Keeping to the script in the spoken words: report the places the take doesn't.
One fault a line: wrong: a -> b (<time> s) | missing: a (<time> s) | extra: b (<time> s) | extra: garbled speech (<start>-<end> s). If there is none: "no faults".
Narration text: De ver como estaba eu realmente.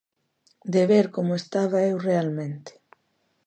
no faults